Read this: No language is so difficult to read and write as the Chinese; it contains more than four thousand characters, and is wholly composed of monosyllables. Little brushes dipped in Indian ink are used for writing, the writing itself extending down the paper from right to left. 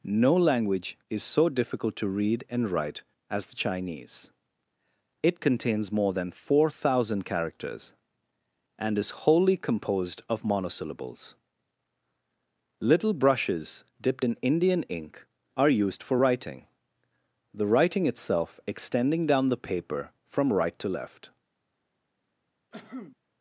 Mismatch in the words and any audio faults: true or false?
true